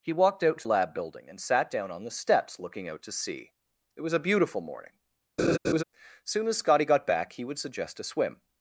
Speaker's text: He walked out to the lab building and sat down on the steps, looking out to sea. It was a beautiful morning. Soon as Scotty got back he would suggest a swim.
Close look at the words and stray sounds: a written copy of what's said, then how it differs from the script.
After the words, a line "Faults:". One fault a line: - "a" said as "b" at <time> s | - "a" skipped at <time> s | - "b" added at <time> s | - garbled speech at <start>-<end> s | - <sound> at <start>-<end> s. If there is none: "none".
He walked out to lab building and sat down on the steps, looking out to sea. It was a beautiful morning. Soon as Scotty got back he would suggest a swim.
Faults:
- "the" skipped at 0.7 s
- laugh at 5.4-5.8 s